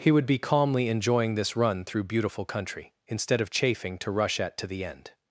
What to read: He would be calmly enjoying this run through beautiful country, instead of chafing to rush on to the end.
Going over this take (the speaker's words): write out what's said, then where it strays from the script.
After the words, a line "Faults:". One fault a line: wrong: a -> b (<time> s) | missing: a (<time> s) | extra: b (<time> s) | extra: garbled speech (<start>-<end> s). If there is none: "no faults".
He would be calmly enjoying this run through beautiful country, instead of chafing to rush at to the end.
Faults:
wrong: on -> at (4.4 s)